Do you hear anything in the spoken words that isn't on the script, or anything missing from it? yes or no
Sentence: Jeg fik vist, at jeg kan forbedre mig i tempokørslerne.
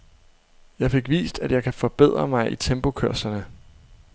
no